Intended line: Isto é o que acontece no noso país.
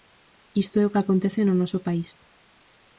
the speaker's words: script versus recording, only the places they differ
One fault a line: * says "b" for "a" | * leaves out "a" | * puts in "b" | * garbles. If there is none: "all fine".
all fine